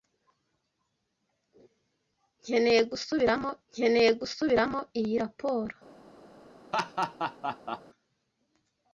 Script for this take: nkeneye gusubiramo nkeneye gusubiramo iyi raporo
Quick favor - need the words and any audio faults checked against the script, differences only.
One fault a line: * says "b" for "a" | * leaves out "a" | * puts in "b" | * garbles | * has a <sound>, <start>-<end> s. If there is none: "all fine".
* has a laugh, 6.7-7.8 s